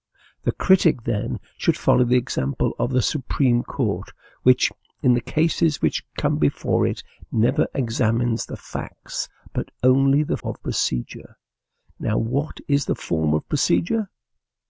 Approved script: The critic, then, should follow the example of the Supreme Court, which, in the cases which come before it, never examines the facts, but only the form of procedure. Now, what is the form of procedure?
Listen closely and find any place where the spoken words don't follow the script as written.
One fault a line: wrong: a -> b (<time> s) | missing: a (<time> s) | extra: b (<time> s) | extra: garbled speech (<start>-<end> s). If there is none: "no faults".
missing: form (10.4 s)